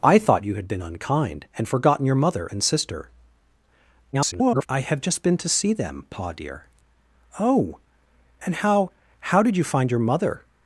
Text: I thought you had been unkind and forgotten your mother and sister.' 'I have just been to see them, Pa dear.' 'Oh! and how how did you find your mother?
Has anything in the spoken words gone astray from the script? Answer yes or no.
yes